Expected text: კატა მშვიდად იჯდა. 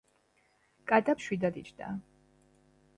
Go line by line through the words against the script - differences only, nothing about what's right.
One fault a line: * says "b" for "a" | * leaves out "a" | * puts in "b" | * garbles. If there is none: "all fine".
all fine